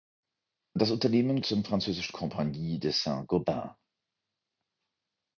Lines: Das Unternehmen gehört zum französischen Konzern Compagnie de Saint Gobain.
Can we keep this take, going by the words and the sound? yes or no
no